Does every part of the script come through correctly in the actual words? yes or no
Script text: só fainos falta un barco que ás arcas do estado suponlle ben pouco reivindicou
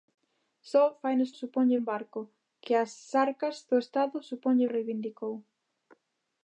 no